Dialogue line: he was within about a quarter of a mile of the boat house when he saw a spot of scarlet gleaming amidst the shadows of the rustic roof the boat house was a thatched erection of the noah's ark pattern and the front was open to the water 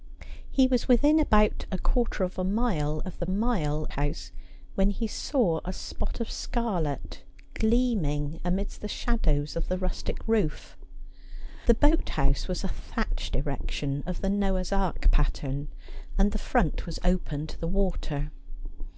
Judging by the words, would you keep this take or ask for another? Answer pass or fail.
fail